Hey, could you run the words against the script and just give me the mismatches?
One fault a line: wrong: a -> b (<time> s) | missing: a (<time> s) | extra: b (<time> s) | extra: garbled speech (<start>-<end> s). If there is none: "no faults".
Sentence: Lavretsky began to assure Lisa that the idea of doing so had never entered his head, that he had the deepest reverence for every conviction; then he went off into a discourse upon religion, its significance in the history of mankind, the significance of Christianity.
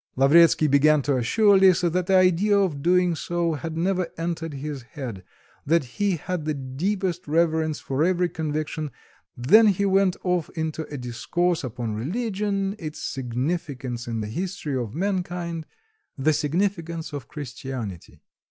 no faults